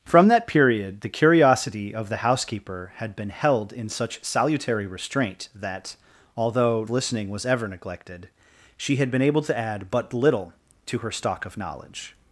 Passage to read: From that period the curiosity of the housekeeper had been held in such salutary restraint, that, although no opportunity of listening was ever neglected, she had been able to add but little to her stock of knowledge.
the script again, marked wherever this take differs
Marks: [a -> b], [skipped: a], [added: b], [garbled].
From that period the curiosity of the housekeeper had been held in such salutary restraint, that, although [skipped: no opportunity of] listening was ever neglected, she had been able to add but little to her stock of knowledge.